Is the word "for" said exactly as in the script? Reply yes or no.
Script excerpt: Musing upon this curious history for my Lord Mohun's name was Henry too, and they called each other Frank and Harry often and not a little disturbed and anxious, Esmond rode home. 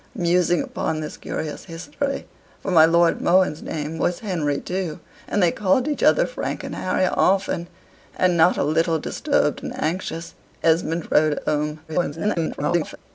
yes